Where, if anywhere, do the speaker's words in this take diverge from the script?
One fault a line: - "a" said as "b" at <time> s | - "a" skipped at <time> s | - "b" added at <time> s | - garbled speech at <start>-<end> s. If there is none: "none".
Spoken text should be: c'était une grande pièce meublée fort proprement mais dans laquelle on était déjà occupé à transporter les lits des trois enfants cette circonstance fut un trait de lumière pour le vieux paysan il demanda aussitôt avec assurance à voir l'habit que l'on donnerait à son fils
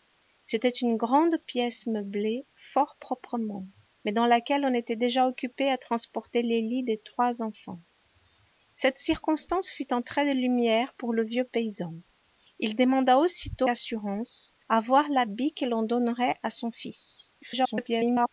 - "avec" skipped at 13.7 s
- garbled speech at 17.4-18.3 s